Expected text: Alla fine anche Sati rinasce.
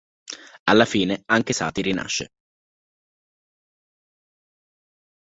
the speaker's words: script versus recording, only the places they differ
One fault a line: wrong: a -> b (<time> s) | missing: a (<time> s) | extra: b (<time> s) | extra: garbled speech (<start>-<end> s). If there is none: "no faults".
no faults